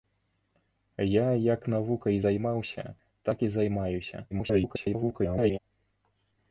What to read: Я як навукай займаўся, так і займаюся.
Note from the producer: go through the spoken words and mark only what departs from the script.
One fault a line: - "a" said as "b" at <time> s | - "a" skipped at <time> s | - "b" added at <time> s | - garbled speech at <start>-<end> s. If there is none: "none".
- garbled speech at 4.3-5.6 s